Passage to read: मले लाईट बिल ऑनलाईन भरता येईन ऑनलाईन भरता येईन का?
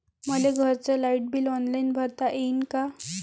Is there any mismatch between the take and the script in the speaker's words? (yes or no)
yes